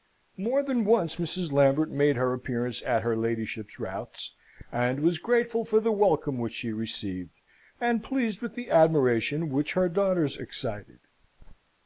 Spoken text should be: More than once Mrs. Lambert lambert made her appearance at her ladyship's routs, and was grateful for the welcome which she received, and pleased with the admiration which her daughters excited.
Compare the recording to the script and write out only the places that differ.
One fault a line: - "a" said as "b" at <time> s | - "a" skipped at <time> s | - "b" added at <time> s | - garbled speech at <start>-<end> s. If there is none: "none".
- "lambert" skipped at 1.9 s